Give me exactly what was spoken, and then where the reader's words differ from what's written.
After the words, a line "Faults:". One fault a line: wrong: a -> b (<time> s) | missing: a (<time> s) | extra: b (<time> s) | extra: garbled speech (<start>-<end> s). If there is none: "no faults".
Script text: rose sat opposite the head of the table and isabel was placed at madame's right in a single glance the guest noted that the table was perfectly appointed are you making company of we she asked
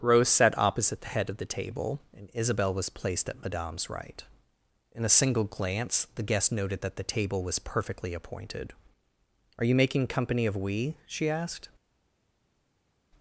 rose sat opposite the head of the table and isabel was placed at madame's right in a single glance the guest noted that the table was perfectly appointed are you making company of we she asked
Faults:
no faults